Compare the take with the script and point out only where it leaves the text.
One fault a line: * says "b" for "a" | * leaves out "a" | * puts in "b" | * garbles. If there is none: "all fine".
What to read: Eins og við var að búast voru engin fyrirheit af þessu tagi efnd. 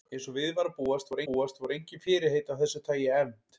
* puts in "búast voru"